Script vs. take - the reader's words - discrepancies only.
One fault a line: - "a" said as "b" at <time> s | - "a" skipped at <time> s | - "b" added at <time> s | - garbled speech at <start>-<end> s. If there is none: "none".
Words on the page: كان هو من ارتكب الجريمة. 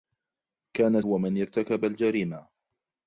none